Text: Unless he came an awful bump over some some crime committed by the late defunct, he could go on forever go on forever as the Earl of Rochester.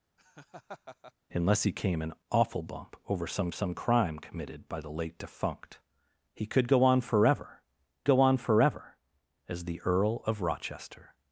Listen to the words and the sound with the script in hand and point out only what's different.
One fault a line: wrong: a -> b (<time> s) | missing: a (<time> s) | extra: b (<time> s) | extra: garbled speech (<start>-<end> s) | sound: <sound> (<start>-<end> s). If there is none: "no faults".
sound: laugh (0.2-1.1 s)